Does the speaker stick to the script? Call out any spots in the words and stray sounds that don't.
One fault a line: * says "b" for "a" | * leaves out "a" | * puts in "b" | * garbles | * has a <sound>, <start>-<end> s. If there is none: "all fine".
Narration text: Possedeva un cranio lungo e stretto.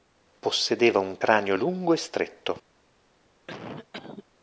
* has a cough, 3.5-4.3 s